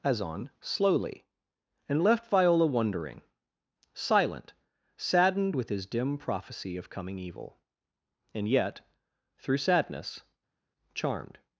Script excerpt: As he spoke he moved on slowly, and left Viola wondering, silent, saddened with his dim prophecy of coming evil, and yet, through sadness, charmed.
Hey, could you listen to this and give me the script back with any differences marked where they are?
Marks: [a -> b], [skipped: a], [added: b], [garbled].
As [skipped: he spoke he moved] on slowly, and left Viola wondering, silent, saddened with his dim prophecy of coming evil, and yet, through sadness, charmed.